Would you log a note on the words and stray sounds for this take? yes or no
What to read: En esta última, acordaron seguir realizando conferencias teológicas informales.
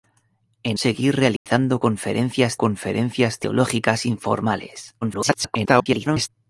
yes